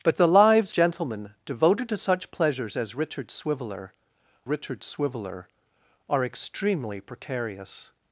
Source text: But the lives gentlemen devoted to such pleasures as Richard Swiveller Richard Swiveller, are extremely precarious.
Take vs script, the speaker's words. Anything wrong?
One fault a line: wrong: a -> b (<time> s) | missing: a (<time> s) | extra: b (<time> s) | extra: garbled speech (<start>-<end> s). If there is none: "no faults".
no faults